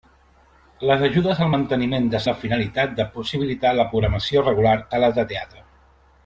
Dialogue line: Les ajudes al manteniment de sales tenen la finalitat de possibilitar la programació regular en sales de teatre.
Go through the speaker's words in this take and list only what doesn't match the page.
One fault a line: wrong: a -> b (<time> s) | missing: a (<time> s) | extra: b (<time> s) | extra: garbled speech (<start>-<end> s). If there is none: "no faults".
missing: sales tenen (2.2 s)
missing: en (4.8 s)